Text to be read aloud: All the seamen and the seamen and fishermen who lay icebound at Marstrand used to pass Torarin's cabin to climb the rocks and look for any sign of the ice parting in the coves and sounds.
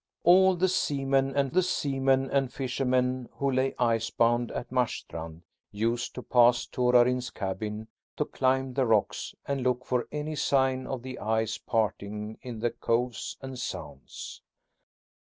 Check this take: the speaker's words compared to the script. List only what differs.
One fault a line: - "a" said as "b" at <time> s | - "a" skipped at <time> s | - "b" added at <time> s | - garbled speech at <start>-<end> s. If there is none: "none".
none